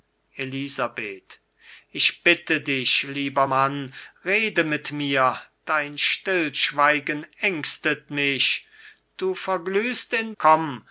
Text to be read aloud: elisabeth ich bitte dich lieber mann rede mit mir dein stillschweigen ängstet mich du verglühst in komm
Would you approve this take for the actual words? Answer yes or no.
yes